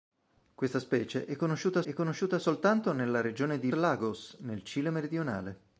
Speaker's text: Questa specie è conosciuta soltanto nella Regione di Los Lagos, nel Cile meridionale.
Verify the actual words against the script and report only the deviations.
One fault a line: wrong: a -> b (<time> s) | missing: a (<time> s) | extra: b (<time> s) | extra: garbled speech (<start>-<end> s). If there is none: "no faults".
extra: è conosciuta (1.8 s)
missing: Los (3.7 s)